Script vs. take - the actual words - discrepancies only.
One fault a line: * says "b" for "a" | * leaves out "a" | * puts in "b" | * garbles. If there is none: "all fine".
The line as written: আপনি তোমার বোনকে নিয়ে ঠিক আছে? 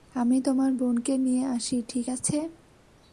* says "আমি" for "আপনি"
* puts in "আসি"